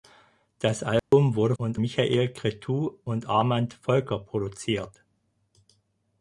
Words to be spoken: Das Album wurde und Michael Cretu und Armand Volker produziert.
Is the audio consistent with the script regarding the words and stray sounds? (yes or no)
no